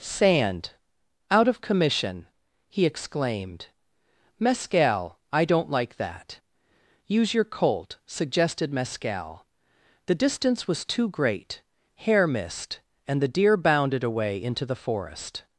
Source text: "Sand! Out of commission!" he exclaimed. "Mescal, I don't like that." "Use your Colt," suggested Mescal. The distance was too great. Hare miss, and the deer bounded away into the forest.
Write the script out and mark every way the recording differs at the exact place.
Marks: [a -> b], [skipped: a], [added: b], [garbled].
"Sand! Out of commission!" he exclaimed. "Mescal, I don't like that." "Use your Colt," suggested Mescal. The distance was too great. Hare [miss, -> missed] and the deer bounded away into the forest.